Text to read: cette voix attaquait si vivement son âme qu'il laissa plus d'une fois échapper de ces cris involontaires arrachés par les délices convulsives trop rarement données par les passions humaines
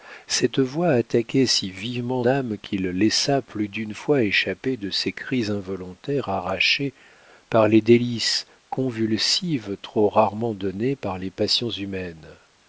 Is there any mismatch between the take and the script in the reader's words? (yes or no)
yes